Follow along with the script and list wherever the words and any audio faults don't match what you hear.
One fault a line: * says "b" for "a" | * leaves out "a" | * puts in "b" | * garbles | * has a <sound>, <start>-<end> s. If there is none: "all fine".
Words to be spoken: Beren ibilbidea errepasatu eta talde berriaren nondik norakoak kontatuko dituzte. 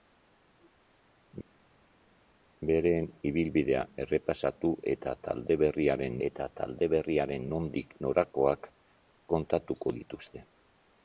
* puts in "eta talde berriaren"